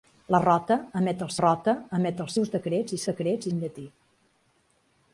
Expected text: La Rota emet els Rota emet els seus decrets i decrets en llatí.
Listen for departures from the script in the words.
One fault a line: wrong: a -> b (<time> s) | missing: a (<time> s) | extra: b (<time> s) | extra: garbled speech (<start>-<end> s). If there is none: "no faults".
no faults